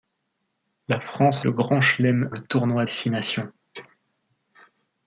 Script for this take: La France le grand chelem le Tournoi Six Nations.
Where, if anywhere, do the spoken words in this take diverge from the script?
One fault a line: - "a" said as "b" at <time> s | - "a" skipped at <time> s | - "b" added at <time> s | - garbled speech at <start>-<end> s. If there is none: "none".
none